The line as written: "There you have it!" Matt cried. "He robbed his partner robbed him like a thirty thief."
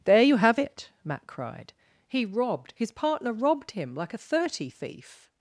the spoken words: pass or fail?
pass